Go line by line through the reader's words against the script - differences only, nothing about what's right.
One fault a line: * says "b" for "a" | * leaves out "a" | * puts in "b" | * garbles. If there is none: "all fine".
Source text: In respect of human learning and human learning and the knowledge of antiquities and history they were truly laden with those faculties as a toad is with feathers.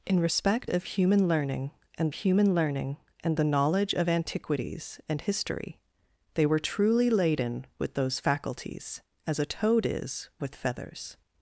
all fine